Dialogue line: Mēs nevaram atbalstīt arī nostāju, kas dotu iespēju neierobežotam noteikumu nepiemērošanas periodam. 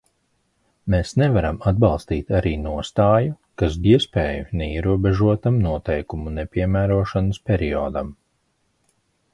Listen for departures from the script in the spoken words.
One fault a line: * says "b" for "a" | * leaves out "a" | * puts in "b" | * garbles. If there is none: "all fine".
* leaves out "dotu"